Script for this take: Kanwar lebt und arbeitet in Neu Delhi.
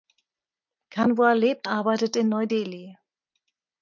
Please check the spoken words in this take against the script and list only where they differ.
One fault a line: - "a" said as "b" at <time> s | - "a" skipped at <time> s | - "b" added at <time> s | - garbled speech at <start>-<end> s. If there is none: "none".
- "und" skipped at 1.7 s